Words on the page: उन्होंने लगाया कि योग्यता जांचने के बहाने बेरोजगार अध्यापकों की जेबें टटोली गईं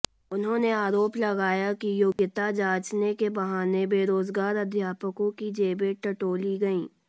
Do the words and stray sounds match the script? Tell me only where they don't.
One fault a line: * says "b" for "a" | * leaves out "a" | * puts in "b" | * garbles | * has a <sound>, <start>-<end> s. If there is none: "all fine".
* puts in "आरोप"
* has a dropout, 2.1-2.2 s